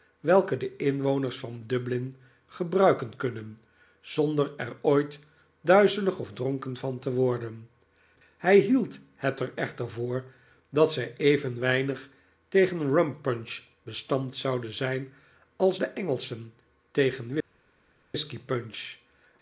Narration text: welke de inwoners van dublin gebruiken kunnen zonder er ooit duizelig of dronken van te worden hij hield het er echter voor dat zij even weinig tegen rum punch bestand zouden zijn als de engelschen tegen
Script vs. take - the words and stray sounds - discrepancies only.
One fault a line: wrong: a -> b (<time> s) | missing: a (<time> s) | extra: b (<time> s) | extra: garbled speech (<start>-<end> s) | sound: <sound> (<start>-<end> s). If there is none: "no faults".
no faults